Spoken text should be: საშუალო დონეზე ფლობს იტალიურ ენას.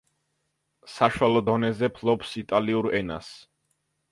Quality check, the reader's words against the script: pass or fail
pass